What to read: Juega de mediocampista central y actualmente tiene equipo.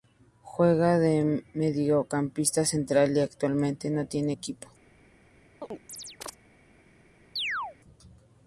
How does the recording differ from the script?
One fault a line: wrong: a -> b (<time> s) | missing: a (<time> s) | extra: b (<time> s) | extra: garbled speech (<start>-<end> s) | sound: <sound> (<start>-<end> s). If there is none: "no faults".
extra: no (3.9 s)
sound: chirp (5.6-6.4 s)
sound: chirp (7.4-7.8 s)